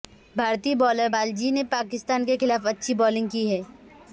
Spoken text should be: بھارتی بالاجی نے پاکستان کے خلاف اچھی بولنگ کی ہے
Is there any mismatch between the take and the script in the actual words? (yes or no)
yes